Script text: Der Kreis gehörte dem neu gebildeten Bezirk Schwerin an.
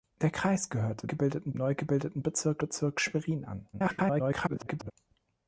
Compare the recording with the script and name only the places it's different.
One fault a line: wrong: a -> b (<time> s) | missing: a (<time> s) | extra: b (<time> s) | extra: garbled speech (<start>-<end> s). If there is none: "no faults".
wrong: dem -> gebildeten (1.1 s)
extra: Bezirk (2.6 s)
extra: garbled speech (3.7-4.9 s)